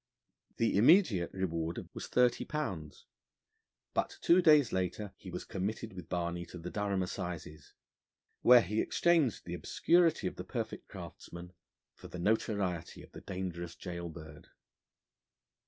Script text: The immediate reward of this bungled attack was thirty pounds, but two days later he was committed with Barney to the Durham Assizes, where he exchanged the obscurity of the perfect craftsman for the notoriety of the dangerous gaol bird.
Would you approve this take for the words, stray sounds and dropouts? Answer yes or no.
no